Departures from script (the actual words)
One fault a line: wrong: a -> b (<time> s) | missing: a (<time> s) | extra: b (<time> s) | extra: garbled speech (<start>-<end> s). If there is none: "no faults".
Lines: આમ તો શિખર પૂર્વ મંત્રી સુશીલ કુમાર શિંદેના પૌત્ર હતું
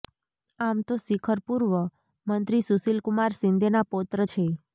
wrong: હતું -> છે (4.2 s)